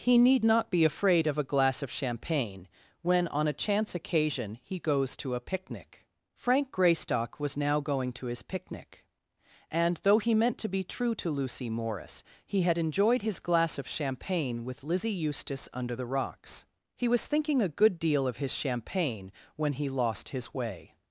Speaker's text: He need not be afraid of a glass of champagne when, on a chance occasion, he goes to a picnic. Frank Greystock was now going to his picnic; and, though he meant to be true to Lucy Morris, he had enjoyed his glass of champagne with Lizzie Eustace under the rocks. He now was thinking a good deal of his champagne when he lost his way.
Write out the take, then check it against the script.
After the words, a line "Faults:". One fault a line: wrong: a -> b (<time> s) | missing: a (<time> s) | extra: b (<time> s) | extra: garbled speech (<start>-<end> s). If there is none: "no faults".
He need not be afraid of a glass of champagne when, on a chance occasion, he goes to a picnic. Frank Greystock was now going to his picnic; and, though he meant to be true to Lucy Morris, he had enjoyed his glass of champagne with Lizzie Eustace under the rocks. He was thinking a good deal of his champagne when he lost his way.
Faults:
missing: now (17.1 s)